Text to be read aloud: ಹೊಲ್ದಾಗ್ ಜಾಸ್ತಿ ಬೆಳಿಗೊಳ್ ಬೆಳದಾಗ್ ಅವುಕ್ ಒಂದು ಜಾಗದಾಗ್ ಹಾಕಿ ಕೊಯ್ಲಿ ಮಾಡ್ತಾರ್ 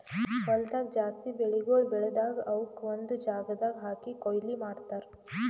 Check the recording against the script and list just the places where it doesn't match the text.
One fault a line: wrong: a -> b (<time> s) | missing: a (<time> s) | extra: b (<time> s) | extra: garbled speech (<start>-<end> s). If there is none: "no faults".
no faults